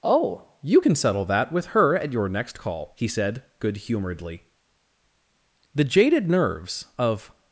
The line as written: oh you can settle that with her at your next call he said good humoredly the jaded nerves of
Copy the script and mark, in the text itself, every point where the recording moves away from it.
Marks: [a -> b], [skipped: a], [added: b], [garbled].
oh you can settle that with her at your next call he said good humoredly the jaded nerves of